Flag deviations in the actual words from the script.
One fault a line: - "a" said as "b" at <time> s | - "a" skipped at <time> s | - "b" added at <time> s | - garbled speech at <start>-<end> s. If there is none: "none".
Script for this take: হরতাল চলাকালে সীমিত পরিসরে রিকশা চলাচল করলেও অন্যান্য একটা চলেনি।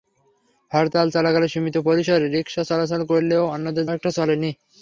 none